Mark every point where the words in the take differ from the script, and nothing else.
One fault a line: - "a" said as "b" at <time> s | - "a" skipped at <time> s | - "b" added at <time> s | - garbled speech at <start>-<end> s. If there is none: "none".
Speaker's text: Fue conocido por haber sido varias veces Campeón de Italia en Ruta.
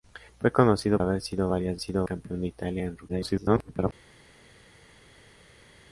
- "por" skipped at 1.0 s
- "veces" said as "sido" at 1.8 s
- garbled speech at 3.1-3.9 s